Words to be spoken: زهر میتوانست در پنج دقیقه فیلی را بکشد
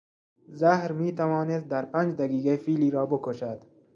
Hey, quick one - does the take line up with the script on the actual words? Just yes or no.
yes